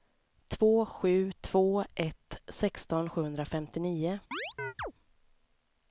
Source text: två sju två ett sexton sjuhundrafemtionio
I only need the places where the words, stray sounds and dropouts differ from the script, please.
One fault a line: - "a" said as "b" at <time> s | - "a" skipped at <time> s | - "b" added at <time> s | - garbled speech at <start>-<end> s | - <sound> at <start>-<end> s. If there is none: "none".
- chirp at 4.3-4.9 s